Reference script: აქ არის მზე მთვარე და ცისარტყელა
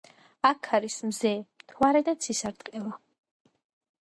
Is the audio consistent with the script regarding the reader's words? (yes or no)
yes